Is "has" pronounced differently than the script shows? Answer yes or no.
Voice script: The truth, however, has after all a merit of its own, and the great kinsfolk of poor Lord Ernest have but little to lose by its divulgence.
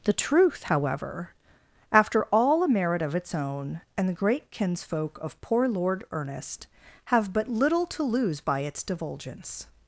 yes